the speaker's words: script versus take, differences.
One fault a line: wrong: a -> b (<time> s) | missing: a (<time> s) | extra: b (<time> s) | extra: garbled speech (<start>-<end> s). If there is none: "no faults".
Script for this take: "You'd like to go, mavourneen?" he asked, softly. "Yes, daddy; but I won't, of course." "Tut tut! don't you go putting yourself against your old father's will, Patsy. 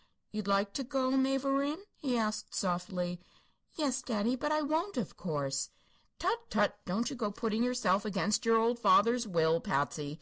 no faults